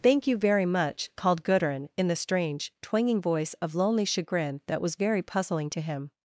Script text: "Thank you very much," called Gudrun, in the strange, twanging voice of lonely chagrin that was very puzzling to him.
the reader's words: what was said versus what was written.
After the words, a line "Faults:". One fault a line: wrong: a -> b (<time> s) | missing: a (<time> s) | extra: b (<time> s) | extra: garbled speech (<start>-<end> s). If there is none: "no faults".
"Thank you very much," called Gudrun, in the strange, twanging voice of lonely chagrin that was very puzzling to him.
Faults:
no faults